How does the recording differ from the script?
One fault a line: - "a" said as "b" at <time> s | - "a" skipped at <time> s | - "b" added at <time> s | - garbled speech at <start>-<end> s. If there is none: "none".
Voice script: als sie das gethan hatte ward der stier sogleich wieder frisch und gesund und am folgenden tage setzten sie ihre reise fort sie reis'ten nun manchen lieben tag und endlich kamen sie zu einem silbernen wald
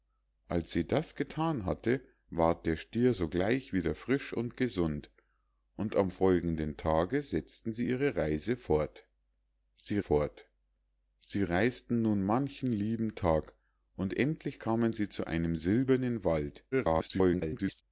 - "fort sie" added at 10.0 s
- garbled speech at 16.7-17.8 s